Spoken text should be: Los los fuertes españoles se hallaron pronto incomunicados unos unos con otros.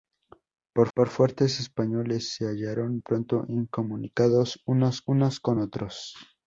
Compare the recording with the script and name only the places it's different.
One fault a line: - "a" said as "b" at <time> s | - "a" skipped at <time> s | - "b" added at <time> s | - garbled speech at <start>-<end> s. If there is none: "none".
none